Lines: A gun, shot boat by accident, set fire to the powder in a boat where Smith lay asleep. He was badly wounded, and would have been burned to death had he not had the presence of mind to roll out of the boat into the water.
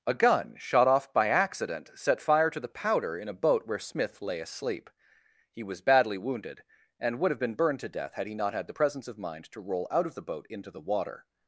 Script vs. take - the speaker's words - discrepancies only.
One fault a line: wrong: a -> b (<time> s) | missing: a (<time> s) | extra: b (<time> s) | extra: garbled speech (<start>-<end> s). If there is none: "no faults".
wrong: boat -> off (0.9 s)